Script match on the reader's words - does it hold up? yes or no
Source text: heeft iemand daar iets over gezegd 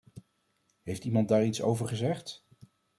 yes